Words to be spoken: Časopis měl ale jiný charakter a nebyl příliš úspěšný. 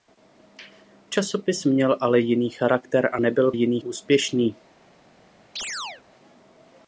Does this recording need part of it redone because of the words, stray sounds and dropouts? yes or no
yes